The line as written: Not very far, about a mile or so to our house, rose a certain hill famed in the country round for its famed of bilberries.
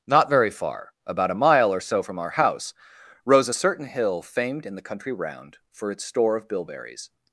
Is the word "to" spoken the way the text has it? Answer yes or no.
no